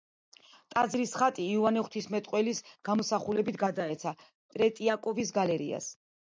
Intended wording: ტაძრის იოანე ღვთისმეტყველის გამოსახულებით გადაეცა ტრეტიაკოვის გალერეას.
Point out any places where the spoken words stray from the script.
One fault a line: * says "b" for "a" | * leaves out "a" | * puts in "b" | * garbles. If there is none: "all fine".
* puts in "ხატი"